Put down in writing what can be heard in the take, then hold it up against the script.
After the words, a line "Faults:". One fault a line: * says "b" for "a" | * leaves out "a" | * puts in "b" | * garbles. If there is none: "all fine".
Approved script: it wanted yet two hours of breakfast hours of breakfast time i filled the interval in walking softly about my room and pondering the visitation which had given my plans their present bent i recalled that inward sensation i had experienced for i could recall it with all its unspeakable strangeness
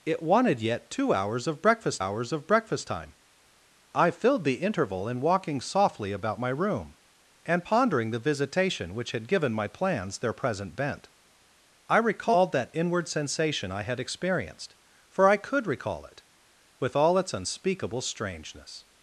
it wanted yet two hours of breakfast hours of breakfast time i filled the interval in walking softly about my room and pondering the visitation which had given my plans their present bent i recalled that inward sensation i had experienced for i could recall it with all its unspeakable strangeness
Faults:
all fine